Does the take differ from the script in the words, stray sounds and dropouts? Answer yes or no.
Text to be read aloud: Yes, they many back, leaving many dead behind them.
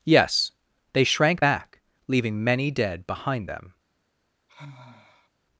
yes